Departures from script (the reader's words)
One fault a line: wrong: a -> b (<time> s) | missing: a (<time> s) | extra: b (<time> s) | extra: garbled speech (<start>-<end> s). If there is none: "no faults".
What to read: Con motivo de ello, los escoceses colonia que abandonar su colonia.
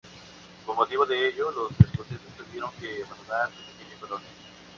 wrong: colonia -> tuvieron (2.4 s)
extra: pequeña (3.7 s)